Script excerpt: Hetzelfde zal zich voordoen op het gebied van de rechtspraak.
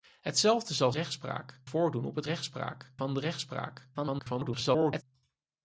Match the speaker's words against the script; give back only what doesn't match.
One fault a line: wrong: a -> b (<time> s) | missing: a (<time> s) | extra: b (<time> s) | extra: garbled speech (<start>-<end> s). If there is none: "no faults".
wrong: zich -> rechtspraak (0.9 s)
wrong: gebied -> rechtspraak (2.2 s)
extra: garbled speech (3.9-5.0 s)